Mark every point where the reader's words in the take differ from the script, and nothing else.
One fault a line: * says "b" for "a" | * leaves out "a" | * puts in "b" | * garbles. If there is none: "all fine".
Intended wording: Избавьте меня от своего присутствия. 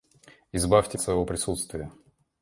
* leaves out "меня"